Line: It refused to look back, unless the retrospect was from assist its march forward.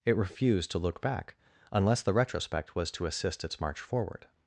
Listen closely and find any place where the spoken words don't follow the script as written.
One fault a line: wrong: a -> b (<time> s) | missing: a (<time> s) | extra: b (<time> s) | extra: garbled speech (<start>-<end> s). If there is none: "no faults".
wrong: from -> to (2.9 s)